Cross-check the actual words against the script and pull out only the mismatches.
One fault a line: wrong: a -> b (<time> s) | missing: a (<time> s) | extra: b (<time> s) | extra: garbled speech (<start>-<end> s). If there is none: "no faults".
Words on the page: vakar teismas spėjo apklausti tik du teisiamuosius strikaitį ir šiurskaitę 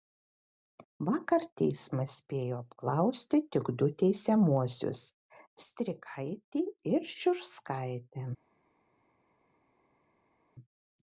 no faults